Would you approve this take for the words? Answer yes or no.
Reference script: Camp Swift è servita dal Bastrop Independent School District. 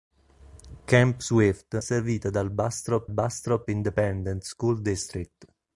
no